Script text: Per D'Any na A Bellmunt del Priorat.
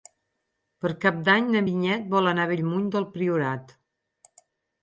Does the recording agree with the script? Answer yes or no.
no